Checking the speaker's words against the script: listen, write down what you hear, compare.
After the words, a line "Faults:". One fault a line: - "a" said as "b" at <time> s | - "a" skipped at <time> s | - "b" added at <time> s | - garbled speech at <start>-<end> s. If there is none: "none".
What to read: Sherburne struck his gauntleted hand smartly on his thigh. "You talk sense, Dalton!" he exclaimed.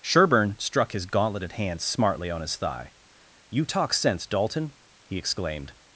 Sherburne struck his gauntleted hand smartly on his thigh. "You talk sense, Dalton!" he exclaimed.
Faults:
none